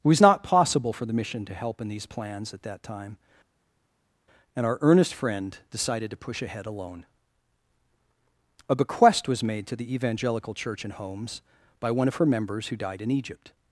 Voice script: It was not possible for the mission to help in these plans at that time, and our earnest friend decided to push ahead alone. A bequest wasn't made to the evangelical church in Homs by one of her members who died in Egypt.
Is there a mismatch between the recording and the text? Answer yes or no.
yes